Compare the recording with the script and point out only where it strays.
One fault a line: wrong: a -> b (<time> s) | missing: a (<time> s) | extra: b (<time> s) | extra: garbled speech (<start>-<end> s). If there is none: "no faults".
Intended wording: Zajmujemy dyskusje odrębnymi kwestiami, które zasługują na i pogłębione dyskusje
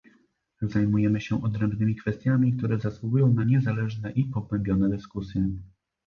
wrong: dyskusje -> się (1.2 s)
extra: niezależne (3.4 s)